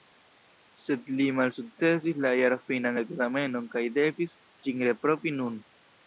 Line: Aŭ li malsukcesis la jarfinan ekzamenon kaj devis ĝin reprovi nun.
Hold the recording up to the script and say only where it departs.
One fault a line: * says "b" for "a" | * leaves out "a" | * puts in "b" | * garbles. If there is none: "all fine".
* says "Sed" for "Aŭ"